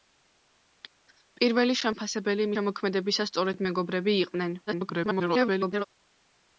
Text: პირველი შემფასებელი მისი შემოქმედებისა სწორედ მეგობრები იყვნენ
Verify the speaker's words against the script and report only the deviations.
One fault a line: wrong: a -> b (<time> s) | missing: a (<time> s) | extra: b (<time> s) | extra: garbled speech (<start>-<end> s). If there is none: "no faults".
missing: მისი (2.5 s)
extra: garbled speech (4.7-5.9 s)